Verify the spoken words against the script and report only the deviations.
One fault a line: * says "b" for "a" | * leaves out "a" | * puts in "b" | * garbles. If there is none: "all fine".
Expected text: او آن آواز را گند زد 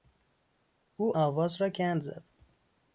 * leaves out "آن"